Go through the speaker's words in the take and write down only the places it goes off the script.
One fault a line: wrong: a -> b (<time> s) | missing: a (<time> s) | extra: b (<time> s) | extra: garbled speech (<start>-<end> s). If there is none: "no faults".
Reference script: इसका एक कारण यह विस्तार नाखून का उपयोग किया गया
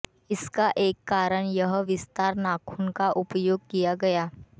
no faults